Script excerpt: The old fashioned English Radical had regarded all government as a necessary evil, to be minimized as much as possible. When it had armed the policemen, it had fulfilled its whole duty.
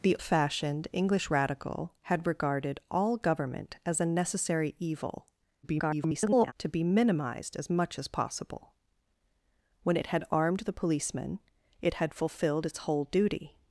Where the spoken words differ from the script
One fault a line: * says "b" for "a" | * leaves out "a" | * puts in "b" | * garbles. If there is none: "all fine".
* leaves out "old"
* garbles